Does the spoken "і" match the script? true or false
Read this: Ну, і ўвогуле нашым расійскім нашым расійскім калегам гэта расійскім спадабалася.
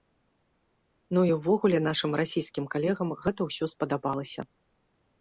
true